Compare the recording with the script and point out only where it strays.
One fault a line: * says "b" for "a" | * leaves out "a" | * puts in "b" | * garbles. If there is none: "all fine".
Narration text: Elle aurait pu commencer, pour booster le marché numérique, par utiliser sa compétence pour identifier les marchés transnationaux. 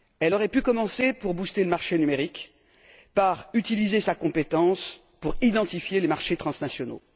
all fine